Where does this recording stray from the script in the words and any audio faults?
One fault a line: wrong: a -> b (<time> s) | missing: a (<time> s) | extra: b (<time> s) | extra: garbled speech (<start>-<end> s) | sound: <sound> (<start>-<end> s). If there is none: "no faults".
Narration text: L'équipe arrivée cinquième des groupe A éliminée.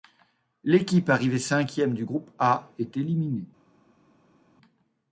wrong: des -> du (1.9 s)
extra: est (2.8 s)